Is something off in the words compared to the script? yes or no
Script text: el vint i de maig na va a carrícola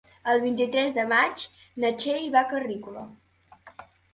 yes